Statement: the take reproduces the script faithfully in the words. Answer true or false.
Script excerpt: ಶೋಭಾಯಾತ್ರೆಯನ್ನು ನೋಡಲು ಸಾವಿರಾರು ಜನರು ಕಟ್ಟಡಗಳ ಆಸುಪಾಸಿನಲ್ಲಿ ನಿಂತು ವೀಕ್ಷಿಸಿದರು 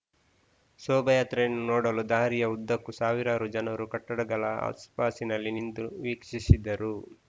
false